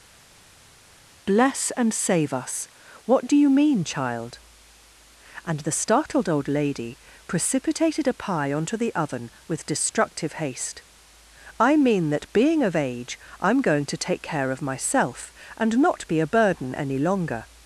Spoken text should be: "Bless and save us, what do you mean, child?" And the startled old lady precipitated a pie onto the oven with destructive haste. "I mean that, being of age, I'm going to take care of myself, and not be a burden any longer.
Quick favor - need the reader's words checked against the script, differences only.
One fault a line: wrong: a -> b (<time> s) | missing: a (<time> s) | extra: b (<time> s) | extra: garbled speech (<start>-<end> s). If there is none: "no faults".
no faults